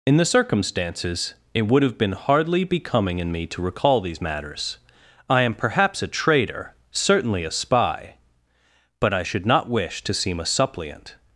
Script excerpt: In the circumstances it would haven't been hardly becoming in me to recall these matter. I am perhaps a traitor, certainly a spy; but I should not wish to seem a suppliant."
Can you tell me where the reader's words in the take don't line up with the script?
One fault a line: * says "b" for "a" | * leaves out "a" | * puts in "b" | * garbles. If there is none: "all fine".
* says "have" for "haven't"
* says "matters" for "matter"